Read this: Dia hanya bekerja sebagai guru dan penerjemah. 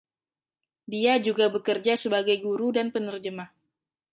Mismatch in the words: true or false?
true